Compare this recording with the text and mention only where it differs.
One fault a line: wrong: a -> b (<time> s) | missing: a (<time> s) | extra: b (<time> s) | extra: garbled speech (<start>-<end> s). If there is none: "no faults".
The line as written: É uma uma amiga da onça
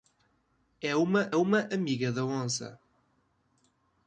no faults